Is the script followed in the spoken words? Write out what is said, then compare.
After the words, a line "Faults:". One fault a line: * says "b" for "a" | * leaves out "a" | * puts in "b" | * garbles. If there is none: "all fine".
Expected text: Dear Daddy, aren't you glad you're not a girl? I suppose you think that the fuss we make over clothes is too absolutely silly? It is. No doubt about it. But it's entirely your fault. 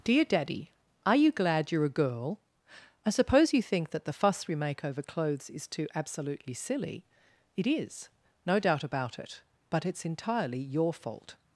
Dear Daddy, are you glad you're a girl? I suppose you think that the fuss we make over clothes is too absolutely silly? It is. No doubt about it. But it's entirely your fault.
Faults:
* says "are" for "aren't"
* leaves out "not"